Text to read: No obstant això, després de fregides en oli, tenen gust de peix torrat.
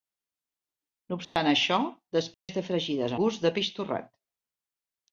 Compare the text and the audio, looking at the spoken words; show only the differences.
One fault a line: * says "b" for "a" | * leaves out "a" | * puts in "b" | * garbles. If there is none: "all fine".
* leaves out "en oli tenen"